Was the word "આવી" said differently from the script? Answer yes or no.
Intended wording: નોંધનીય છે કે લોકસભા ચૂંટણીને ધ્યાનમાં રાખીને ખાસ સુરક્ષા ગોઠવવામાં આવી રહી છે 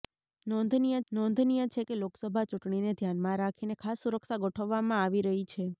no